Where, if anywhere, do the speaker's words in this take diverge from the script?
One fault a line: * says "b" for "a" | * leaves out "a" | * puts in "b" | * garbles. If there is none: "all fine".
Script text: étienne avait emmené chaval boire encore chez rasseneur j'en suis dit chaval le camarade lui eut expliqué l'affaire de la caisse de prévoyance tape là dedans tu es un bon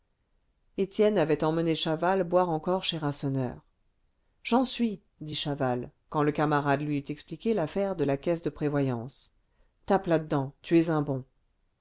* puts in "quand"